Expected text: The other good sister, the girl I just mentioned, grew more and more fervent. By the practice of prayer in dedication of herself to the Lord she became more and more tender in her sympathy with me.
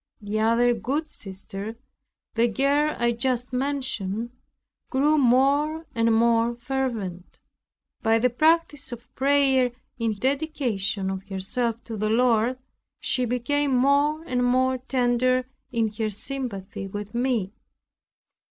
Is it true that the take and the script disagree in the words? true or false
false